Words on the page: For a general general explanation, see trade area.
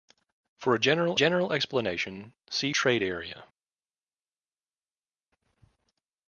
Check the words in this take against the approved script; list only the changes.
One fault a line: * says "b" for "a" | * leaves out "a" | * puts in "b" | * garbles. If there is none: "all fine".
all fine